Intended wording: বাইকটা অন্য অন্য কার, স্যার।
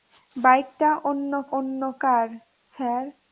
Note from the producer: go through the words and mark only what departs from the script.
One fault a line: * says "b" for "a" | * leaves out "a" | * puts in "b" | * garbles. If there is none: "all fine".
all fine